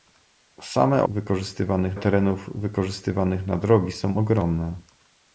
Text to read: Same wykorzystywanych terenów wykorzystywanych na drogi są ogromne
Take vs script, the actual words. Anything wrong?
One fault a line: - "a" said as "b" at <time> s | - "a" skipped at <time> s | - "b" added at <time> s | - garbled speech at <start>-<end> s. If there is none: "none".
none